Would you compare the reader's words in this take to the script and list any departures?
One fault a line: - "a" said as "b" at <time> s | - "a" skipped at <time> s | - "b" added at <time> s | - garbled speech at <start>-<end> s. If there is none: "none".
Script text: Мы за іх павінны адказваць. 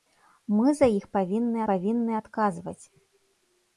- "павінны" added at 1.7 s